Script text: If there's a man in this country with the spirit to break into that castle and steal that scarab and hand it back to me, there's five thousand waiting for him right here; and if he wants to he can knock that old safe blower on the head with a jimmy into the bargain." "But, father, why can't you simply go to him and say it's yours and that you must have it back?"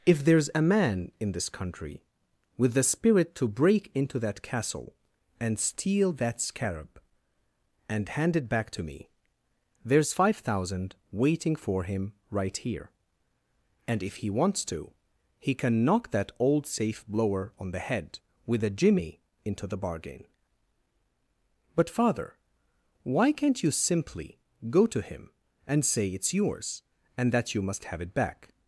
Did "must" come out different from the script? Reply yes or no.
no